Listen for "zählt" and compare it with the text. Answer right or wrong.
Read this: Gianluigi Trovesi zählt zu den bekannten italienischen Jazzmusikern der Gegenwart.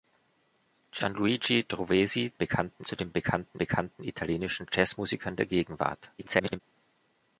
wrong